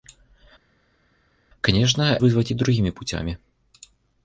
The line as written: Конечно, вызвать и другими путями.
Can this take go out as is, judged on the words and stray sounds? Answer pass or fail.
pass